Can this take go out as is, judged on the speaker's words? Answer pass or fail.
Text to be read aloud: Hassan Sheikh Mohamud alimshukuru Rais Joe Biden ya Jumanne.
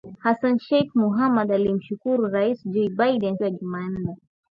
pass